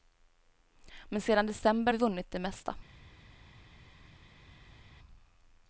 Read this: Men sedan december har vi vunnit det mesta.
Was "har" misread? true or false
true